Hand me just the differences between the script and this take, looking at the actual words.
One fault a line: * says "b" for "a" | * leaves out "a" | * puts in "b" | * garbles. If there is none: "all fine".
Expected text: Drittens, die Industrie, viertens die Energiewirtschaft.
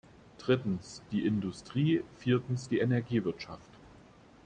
all fine